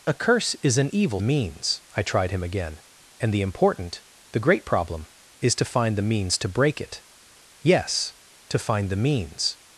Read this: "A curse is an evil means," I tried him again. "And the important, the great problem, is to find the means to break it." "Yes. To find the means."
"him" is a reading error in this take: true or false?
false